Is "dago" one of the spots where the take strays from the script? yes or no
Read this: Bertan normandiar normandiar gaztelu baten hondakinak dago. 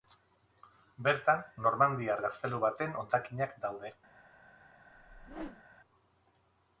yes